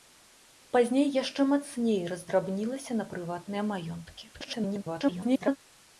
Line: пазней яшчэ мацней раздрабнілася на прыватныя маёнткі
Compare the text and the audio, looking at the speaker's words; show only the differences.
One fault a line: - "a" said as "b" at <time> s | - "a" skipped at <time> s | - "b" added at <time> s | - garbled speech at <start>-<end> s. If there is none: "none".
- garbled speech at 4.3-5.6 s